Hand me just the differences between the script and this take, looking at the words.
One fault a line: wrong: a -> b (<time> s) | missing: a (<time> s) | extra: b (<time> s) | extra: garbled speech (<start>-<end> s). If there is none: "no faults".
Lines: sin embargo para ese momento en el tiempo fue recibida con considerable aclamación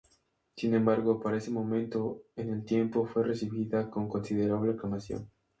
no faults